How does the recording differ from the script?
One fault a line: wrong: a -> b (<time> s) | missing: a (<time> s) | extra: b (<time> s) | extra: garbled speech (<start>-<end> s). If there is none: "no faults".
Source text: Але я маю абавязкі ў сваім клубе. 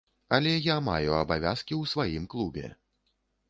no faults